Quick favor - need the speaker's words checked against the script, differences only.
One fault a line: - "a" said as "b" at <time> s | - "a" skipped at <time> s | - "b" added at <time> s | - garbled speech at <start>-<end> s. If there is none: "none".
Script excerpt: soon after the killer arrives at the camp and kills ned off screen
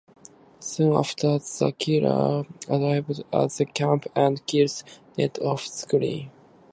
none